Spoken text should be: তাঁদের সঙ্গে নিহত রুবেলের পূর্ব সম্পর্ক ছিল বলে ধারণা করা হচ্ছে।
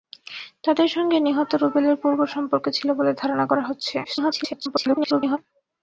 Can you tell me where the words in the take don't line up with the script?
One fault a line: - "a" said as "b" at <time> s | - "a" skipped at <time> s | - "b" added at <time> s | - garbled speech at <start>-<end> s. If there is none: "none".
- garbled speech at 4.0-5.4 s